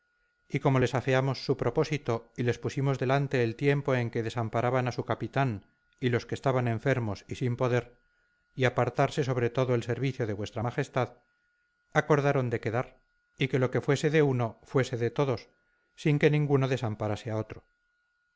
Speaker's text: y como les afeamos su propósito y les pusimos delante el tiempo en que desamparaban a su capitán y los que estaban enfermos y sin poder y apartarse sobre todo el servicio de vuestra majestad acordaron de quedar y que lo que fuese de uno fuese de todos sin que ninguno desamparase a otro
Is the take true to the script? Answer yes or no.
yes